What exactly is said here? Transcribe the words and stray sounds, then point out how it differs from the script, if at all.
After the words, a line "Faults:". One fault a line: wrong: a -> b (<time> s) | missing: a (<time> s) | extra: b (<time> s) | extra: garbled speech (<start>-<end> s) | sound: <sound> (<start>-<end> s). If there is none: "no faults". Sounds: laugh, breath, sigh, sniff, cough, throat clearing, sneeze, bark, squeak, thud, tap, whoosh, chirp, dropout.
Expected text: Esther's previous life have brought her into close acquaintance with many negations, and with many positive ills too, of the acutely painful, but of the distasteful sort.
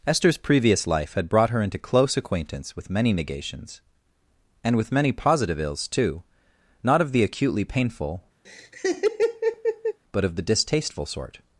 Esther's previous life had brought her into close acquaintance with many negations, and with many positive ills too, not of the acutely painful, but of the distasteful sort.
Faults:
wrong: have -> had (1.1 s)
extra: not (6.8 s)
sound: laugh (8.4-10.0 s)